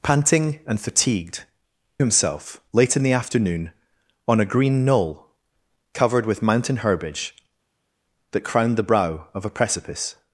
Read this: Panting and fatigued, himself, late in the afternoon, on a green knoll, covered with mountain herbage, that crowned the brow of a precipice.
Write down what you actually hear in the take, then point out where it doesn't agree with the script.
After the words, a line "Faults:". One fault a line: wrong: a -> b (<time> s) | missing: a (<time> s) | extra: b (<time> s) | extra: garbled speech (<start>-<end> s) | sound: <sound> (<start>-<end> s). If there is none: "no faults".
Panting and fatigued, himself, late in the afternoon, on a green knoll, covered with mountain herbage, that crowned the brow of a precipice.
Faults:
no faults